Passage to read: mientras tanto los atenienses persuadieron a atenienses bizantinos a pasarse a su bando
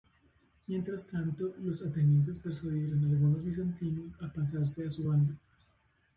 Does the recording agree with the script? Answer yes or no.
no